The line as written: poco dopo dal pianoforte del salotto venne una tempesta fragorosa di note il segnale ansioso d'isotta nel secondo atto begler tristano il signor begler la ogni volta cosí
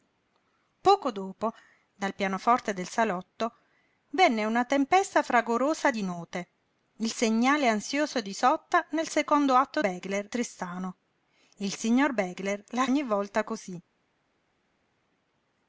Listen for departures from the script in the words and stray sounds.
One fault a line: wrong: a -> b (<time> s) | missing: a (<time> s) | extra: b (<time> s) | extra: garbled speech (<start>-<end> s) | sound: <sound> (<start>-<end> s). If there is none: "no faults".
no faults